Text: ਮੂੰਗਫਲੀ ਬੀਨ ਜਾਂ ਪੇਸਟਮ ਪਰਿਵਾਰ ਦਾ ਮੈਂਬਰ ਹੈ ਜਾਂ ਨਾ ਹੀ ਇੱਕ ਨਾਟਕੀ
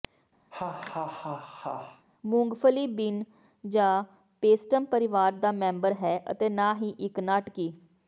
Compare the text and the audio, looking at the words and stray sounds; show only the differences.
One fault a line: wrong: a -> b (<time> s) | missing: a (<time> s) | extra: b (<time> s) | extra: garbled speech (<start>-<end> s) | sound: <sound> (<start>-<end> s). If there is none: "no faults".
sound: laugh (0.5-2.1 s)
wrong: ਜਾਂ -> ਅਤੇ (6.3 s)